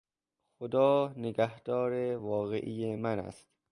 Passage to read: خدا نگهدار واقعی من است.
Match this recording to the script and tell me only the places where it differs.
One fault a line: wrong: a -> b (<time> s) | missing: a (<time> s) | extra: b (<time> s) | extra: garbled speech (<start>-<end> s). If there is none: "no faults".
no faults